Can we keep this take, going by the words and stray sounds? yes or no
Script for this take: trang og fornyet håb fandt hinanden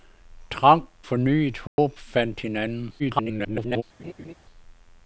no